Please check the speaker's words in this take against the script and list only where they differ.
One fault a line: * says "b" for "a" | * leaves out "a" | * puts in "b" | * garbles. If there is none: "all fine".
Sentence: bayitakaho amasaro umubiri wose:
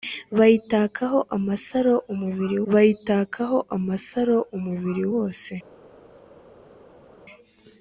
* puts in "bayitakaho amasaro umubiri"